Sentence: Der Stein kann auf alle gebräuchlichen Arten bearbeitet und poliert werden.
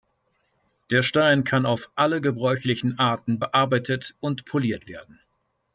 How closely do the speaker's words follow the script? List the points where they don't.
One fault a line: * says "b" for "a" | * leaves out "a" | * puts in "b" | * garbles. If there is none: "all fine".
all fine